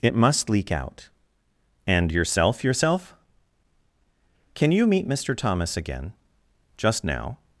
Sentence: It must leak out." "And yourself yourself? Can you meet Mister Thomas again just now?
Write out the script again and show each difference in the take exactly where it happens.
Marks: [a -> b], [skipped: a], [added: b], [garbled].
It must leak out." "And yourself yourself? Can you meet Mister Thomas again just now?